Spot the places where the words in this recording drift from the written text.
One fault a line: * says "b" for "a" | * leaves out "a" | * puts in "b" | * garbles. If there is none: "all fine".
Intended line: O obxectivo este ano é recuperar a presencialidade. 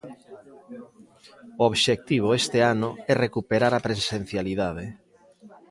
all fine